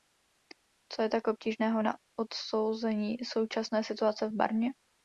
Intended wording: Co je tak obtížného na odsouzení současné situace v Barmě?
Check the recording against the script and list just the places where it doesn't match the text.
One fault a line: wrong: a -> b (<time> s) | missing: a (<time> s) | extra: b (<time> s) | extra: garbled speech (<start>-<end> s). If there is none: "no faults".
no faults